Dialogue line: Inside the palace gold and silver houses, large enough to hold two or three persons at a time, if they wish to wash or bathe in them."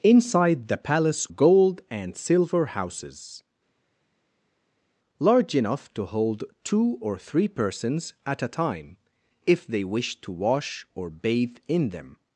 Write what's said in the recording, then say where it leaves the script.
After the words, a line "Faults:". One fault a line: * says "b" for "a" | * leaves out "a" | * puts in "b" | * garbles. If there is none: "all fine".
Inside the palace gold and silver houses, large enough to hold two or three persons at a time, if they wish to wash or bathe in them."
Faults:
all fine